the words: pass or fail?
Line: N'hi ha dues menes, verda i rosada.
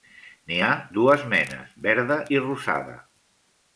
pass